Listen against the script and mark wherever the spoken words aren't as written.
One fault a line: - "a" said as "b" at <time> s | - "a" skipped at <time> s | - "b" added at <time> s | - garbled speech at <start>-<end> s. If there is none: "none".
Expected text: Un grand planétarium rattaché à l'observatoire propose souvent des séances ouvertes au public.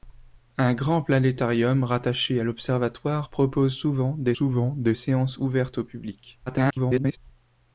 - "souvent des" added at 4.3 s
- garbled speech at 6.5-7.2 s